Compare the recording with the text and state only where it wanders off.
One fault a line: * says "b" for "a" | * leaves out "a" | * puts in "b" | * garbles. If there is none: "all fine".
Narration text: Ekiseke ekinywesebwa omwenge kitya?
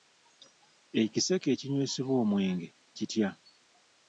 all fine